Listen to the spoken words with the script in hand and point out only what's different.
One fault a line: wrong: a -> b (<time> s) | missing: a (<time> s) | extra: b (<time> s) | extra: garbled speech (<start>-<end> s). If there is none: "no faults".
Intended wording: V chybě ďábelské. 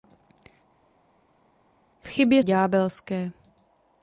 no faults